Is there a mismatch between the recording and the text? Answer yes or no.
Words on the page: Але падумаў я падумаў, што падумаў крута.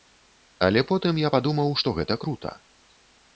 yes